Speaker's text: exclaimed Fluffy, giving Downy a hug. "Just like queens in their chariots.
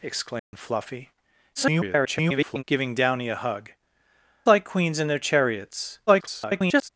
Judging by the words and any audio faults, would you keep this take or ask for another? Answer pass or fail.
fail